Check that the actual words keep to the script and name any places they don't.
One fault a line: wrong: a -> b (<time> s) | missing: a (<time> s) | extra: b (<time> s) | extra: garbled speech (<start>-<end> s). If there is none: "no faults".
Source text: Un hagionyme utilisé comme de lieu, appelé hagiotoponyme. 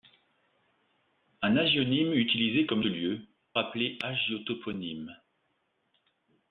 no faults